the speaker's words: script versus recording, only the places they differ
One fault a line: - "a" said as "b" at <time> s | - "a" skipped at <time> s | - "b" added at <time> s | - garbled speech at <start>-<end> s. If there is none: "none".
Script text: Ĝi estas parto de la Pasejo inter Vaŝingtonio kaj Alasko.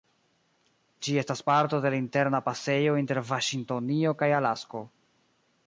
- "Interna" added at 2.0 s